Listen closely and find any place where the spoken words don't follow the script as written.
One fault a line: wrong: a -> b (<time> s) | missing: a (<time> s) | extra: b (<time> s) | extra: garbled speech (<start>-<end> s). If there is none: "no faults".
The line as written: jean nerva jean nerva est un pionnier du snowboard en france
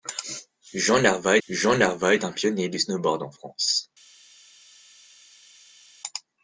no faults